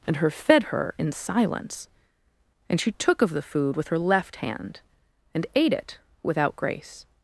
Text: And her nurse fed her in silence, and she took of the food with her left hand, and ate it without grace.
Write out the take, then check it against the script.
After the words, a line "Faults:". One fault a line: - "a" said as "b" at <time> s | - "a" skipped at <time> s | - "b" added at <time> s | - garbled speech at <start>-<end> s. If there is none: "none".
And her fed her in silence, and she took of the food with her left hand, and ate it without grace.
Faults:
- "nurse" skipped at 0.3 s